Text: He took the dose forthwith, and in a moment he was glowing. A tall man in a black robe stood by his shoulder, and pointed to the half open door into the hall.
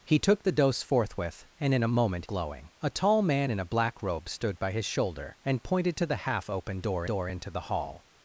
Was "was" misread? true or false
true